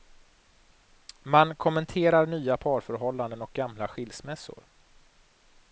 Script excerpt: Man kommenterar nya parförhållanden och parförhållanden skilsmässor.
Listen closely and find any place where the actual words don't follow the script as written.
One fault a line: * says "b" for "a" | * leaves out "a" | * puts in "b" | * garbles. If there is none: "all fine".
* says "gamla" for "parförhållanden"